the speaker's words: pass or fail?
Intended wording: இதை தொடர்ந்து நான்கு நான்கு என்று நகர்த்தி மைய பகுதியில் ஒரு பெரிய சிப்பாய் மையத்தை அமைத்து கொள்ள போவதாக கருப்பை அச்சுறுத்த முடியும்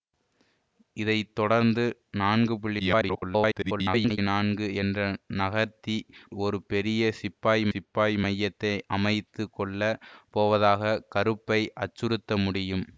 fail